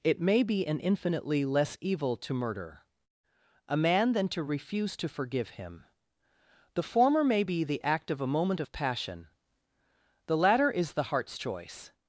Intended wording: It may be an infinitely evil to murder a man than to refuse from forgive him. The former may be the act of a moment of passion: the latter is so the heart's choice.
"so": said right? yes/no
no